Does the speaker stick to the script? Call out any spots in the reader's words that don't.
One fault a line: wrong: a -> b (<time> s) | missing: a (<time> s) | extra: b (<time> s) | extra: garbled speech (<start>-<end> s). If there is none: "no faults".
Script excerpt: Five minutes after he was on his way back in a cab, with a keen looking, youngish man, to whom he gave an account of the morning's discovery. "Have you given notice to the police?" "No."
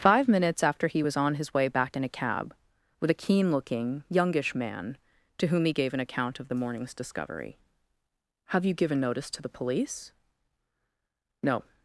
no faults